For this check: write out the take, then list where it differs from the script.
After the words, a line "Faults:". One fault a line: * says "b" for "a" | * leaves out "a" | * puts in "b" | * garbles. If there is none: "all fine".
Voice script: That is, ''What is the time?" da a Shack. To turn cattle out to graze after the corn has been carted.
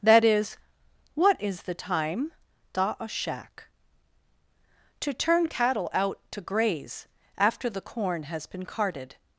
That is, ''What is the time?" da a Shack. To turn cattle out to graze after the corn has been carted.
Faults:
all fine